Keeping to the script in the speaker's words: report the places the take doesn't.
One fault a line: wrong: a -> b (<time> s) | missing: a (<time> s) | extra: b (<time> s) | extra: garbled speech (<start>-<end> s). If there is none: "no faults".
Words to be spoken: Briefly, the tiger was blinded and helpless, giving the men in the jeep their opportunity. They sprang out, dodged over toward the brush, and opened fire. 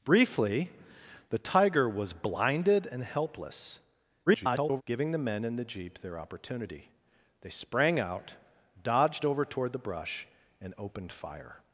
extra: garbled speech (4.3-4.8 s)